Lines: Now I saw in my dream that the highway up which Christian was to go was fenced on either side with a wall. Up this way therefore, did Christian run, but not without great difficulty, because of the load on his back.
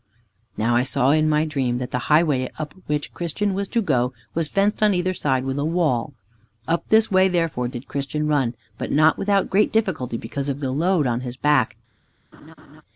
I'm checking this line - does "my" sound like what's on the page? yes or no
yes